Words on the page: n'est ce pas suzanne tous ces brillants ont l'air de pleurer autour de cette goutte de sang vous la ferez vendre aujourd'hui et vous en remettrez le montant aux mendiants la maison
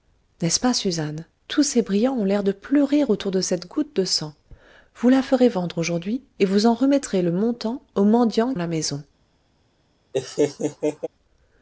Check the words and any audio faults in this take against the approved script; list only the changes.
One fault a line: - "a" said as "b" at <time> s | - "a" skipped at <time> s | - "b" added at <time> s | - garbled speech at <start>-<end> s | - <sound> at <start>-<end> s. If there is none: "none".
- laugh at 10.1-11.1 s